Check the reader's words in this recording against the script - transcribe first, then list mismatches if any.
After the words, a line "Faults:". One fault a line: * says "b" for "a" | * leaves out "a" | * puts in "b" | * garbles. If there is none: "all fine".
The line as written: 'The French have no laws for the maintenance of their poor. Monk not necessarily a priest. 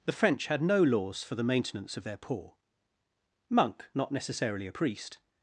'The French had no laws for the maintenance of their poor. Monk not necessarily a priest.
Faults:
* says "had" for "have"